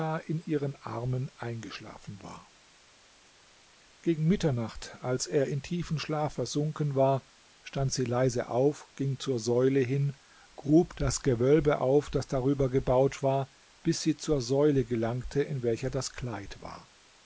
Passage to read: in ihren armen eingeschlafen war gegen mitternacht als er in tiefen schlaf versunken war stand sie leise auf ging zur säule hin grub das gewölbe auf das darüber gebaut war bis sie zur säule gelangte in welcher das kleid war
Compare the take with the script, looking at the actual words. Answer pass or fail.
pass